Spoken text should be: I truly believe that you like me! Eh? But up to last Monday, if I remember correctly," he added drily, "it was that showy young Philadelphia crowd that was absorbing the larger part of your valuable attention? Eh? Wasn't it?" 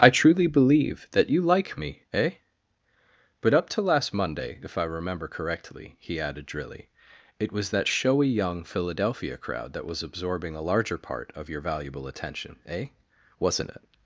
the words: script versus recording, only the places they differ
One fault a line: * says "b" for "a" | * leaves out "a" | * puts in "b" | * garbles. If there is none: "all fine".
* says "a" for "the"